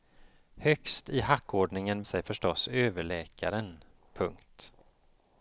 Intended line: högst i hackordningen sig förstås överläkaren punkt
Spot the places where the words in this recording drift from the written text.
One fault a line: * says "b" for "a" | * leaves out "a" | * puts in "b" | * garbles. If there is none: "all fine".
all fine